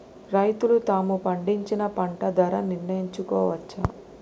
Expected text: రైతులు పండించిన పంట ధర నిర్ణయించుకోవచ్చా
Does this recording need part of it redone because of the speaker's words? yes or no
yes